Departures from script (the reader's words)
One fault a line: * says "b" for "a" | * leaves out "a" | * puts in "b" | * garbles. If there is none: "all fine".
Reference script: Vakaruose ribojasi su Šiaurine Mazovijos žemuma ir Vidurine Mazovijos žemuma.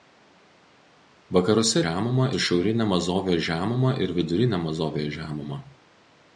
* says "žemuma" for "ribojasi"